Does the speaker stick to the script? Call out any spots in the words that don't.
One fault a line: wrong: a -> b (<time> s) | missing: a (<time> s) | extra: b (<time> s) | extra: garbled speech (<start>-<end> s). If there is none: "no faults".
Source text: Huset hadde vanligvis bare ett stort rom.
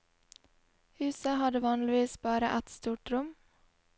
no faults